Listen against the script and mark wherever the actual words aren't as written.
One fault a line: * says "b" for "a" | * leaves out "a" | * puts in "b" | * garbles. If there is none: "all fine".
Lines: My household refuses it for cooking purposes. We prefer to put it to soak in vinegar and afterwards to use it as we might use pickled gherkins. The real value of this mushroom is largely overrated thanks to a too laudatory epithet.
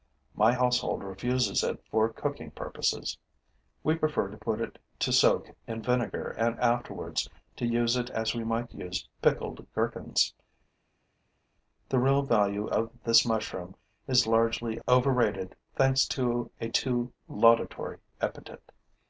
all fine